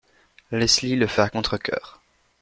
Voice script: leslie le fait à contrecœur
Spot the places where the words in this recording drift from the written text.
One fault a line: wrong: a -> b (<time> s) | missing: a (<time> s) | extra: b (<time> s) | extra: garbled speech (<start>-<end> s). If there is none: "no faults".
no faults